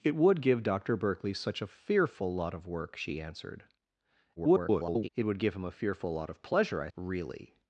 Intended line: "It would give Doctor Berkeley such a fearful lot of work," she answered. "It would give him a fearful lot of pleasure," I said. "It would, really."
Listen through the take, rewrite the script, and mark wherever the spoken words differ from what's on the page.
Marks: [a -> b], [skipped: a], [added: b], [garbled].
"It would give Doctor Berkeley such a fearful lot of work," she answered. [garbled] "It would give him a fearful lot of pleasure," I [skipped: said. "It would,] really."